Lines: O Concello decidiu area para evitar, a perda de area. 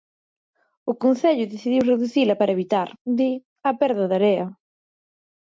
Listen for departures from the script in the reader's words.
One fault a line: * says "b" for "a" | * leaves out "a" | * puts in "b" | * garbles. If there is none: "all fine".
* says "reducila" for "area"
* puts in "di"